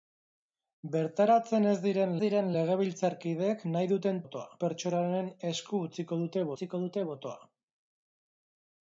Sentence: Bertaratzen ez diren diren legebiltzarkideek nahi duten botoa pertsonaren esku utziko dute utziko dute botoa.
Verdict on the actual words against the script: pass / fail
pass